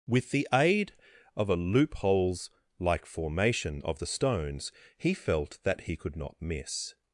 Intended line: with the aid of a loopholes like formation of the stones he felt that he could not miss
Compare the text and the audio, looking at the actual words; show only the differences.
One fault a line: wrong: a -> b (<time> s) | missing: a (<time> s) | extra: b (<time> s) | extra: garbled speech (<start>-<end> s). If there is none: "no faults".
no faults